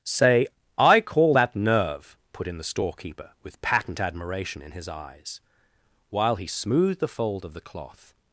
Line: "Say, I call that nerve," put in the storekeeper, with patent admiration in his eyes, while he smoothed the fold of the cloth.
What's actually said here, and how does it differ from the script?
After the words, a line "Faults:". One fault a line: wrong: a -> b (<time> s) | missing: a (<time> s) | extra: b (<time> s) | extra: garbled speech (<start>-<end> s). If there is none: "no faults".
"Say, I call that nerve," put in the storekeeper, with patent admiration in his eyes, while he smoothed the fold of the cloth.
Faults:
no faults